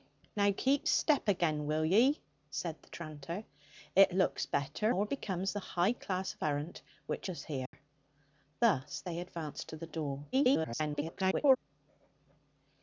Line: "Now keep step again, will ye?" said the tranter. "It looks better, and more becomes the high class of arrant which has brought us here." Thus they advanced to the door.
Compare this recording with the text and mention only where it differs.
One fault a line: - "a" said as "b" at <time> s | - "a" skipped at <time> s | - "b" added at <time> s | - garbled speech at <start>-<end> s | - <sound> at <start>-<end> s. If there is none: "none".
- "and" skipped at 5.0 s
- "has brought" skipped at 7.3 s
- dropout at 7.7-7.7 s
- garbled speech at 10.3-11.6 s